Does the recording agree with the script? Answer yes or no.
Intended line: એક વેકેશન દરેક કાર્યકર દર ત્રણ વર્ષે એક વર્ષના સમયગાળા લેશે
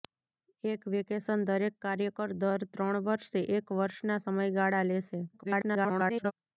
no